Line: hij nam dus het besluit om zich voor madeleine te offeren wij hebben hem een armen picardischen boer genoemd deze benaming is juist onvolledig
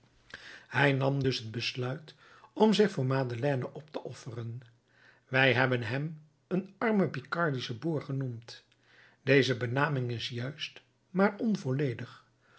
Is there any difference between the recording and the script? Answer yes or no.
yes